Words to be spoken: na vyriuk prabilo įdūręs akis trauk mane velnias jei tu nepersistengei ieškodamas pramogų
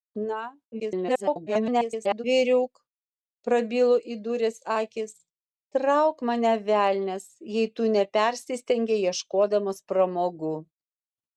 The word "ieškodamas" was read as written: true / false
true